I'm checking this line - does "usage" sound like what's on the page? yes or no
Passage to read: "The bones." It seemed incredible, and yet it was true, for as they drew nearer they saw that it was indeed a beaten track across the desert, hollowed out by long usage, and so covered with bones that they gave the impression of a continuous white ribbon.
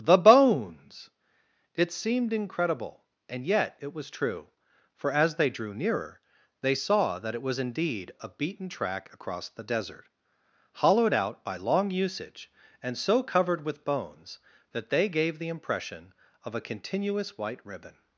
yes